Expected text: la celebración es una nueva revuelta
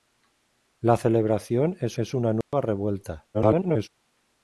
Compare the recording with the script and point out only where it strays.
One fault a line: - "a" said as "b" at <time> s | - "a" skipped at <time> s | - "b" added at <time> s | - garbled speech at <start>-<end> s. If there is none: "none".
- "es" added at 1.9 s
- garbled speech at 3.3-3.9 s